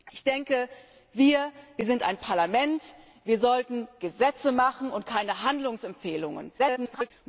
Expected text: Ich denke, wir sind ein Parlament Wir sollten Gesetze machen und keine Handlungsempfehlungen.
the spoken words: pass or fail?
fail